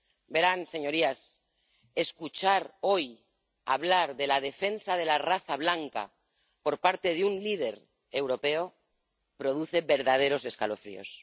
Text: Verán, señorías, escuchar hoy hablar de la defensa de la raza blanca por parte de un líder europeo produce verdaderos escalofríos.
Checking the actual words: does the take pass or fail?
pass